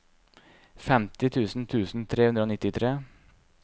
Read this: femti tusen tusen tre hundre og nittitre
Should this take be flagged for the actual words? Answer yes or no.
no